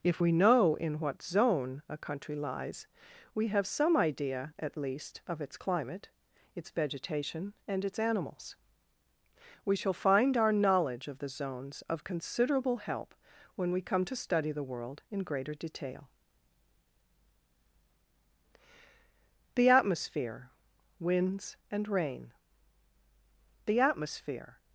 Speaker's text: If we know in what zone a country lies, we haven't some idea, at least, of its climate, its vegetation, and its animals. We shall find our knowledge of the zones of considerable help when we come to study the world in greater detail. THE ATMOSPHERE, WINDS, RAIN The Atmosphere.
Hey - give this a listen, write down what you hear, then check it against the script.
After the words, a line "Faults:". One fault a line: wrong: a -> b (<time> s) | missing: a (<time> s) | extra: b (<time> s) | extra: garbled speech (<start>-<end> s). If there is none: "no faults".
If we know in what zone a country lies, we have some idea, at least, of its climate, its vegetation, and its animals. We shall find our knowledge of the zones of considerable help when we come to study the world in greater detail. THE ATMOSPHERE, WINDS, AND RAIN The Atmosphere.
Faults:
wrong: haven't -> have (3.5 s)
extra: AND (21.7 s)